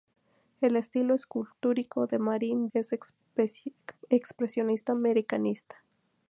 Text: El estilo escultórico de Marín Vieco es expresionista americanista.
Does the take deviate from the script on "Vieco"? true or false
true